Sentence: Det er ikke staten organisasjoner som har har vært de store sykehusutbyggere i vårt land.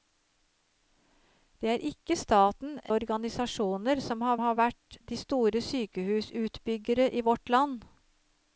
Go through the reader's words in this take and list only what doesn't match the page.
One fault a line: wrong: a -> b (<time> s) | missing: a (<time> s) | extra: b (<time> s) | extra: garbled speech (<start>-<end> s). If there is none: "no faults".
no faults